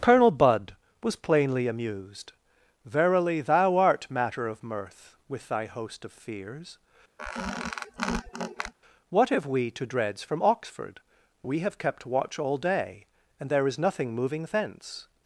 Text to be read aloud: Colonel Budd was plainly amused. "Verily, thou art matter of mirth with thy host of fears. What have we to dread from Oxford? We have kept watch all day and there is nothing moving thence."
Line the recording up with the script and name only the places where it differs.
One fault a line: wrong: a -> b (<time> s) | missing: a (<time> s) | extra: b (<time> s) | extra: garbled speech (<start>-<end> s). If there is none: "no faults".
wrong: dread -> dreads (9.9 s)